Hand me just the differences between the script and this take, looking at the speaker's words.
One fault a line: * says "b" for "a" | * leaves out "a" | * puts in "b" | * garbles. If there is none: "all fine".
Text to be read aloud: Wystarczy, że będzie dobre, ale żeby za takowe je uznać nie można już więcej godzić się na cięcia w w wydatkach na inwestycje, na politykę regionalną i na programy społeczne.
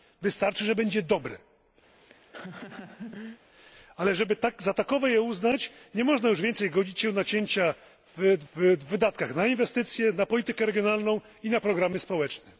all fine